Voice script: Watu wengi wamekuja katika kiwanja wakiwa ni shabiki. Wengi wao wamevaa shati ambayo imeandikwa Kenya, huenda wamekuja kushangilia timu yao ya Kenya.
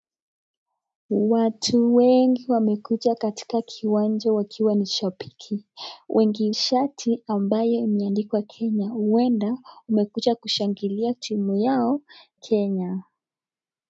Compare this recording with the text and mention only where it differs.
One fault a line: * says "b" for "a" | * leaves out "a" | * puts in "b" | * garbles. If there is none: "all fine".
* leaves out "wao wamevaa"
* leaves out "ya"